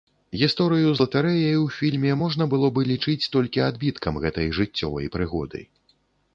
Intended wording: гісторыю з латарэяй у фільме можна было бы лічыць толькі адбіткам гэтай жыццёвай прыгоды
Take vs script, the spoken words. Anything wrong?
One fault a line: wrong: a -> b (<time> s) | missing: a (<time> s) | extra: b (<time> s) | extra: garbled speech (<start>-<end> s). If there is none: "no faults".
no faults